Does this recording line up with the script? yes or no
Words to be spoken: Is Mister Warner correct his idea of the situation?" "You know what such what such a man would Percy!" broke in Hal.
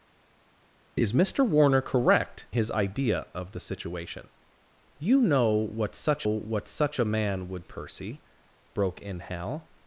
yes